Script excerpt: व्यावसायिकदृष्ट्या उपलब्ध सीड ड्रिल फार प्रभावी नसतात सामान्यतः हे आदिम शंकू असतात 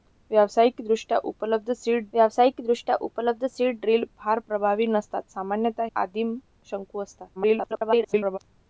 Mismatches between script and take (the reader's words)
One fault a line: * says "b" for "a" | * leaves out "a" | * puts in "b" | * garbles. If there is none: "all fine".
* puts in "व्यावसायिकदृष्ट्या उपलब्ध सीड"
* leaves out "हे"
* garbles